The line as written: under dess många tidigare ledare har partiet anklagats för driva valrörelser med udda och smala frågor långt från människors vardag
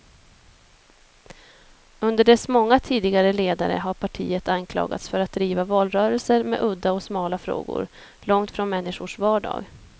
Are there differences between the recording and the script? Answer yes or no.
yes